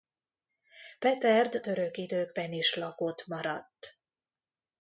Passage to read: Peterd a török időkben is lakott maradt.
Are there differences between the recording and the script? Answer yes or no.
yes